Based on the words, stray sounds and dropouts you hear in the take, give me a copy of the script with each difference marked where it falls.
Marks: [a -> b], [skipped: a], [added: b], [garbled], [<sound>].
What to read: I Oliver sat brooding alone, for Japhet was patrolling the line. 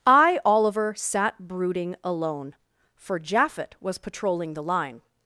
I Oliver sat brooding alone, for Japhet was patrolling the line.